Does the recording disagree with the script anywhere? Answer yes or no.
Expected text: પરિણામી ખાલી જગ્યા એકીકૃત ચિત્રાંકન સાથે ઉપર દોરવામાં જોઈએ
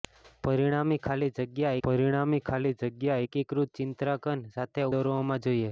yes